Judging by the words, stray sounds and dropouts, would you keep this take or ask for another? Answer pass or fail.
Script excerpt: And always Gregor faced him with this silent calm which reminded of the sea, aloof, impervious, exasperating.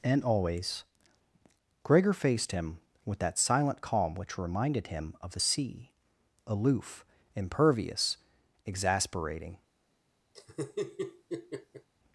fail